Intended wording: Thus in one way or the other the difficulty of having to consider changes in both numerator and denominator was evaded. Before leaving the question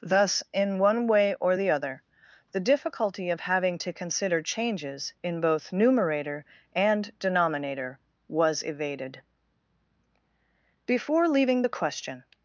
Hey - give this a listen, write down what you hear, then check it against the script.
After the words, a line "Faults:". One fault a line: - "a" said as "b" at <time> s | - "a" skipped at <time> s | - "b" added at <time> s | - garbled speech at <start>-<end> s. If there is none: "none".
Thus in one way or the other the difficulty of having to consider changes in both numerator and denominator was evaded. Before leaving the question
Faults:
none